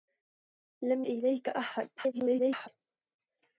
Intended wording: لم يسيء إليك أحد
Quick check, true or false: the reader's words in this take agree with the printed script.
false